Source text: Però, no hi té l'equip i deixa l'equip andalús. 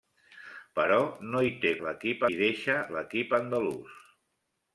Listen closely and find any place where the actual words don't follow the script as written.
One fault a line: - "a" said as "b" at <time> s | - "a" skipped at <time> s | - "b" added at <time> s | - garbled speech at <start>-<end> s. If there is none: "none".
none